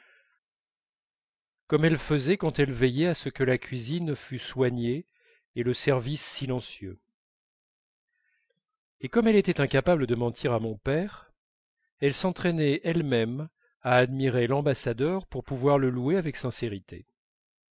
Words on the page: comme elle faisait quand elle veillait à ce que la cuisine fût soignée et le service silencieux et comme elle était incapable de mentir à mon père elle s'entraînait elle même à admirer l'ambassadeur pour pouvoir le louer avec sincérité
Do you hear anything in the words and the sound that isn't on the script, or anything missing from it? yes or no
no